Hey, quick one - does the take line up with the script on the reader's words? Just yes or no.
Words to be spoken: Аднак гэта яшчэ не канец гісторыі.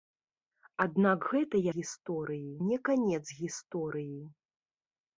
no